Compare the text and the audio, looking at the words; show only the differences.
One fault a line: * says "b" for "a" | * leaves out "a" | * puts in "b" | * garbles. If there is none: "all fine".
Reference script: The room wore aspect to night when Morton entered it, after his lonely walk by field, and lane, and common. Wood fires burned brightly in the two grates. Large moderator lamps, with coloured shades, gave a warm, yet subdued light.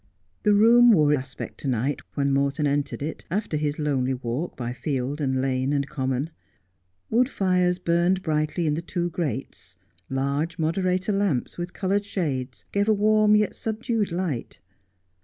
all fine